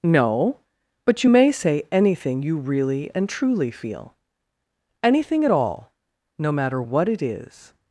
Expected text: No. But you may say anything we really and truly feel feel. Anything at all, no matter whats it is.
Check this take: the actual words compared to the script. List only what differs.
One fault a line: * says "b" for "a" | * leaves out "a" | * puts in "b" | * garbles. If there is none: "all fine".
* says "you" for "we"
* leaves out "feel"
* says "what" for "whats"